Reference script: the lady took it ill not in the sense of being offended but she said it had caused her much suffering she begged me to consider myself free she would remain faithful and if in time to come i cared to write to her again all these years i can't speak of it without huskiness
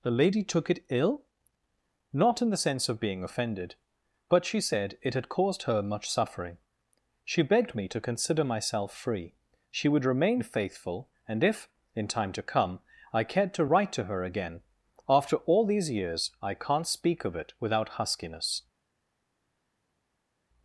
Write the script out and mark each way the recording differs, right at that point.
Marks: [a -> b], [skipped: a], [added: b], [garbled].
the lady took it ill not in the sense of being offended but she said it had caused her much suffering she begged me to consider myself free she would remain faithful and if in time to come i cared to write to her again [added: after] all these years i can't speak of it without huskiness